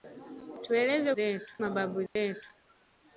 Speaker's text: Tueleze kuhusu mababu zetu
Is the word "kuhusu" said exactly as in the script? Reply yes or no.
no